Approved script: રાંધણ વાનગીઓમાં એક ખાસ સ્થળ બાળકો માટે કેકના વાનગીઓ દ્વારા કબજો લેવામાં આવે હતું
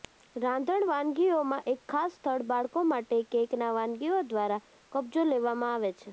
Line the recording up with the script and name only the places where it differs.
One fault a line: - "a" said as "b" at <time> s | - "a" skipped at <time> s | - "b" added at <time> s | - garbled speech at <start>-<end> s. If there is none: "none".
- "હતું" said as "છે" at 5.9 s